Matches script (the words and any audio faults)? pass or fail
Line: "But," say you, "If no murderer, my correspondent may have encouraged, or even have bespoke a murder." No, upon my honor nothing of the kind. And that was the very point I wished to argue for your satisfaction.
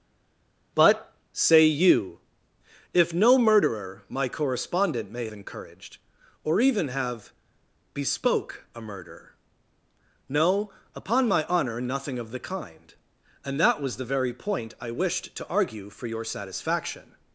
fail